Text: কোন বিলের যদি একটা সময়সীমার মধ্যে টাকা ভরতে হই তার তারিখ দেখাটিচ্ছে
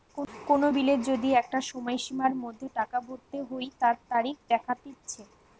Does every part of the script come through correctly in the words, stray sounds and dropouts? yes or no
yes